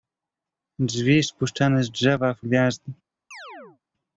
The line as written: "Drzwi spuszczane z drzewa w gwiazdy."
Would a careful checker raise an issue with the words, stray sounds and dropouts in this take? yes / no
yes